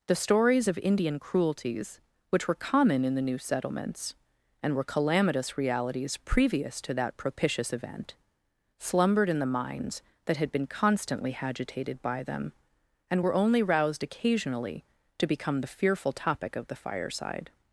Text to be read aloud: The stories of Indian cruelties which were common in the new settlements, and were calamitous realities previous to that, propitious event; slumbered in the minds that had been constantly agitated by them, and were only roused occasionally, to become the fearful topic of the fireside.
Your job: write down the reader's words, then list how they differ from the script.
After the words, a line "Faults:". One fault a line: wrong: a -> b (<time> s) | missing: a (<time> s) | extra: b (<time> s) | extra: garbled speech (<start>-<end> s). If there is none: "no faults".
The stories of Indian cruelties which were common in the new settlements, and were calamitous realities previous to that, propitious event; slumbered in the minds that had been constantly agitated by them, and were only roused occasionally, to become the fearful topic of the fireside.
Faults:
no faults